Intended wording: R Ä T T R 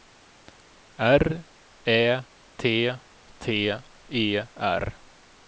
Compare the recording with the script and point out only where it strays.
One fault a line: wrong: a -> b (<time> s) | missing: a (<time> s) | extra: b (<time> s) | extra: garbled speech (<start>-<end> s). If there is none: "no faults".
extra: E (4.1 s)